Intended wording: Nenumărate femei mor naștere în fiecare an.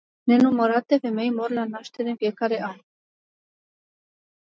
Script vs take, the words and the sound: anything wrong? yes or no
yes